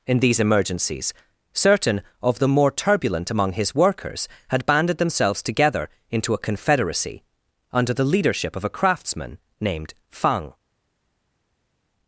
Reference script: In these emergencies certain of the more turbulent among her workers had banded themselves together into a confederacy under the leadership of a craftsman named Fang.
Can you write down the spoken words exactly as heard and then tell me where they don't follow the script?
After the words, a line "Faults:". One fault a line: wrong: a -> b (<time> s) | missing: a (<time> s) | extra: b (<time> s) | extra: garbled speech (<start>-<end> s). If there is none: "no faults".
In these emergencies certain of the more turbulent among his workers had banded themselves together into a confederacy under the leadership of a craftsman named Fang.
Faults:
wrong: her -> his (3.5 s)